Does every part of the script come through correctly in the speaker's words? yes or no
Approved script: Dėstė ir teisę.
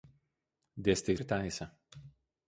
yes